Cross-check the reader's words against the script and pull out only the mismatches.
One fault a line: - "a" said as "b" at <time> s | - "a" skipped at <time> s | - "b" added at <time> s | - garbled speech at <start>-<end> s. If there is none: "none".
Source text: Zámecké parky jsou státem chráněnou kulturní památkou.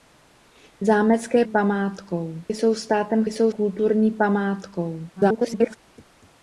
- "parky" said as "památkou" at 1.4 s
- "chráněnou" said as "jsou" at 3.2 s
- garbled speech at 5.2-5.8 s